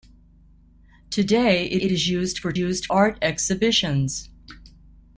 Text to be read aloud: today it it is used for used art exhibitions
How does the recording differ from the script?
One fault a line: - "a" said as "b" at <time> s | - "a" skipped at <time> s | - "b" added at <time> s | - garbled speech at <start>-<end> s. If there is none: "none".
none